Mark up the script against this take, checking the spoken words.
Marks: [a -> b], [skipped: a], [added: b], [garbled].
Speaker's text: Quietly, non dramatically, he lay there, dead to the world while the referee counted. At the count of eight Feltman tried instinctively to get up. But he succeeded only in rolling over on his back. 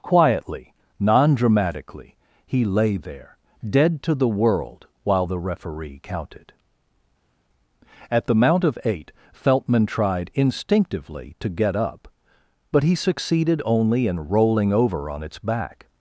Quietly, non dramatically, he lay there, dead to the world while the referee counted. At the [count -> mount] of eight Feltman tried instinctively to get up. But he succeeded only in rolling over on [his -> its] back.